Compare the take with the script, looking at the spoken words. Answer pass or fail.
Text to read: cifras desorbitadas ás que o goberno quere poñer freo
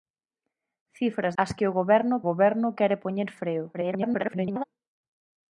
fail